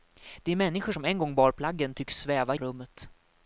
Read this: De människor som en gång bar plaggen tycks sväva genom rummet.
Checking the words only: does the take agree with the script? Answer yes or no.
no